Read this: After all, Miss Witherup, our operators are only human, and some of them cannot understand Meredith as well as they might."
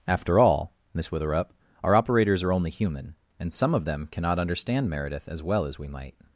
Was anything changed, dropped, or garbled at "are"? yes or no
no